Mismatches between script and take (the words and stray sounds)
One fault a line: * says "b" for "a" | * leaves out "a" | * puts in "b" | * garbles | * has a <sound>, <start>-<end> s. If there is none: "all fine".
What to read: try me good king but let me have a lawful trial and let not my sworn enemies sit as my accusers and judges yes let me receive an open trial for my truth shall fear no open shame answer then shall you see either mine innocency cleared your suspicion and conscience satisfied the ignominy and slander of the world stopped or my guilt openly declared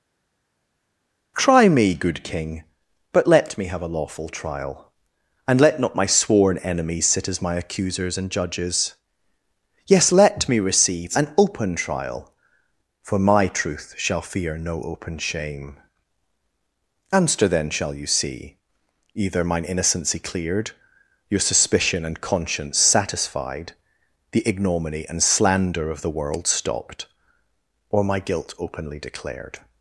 all fine